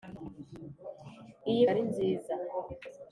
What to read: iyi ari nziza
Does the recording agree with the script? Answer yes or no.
yes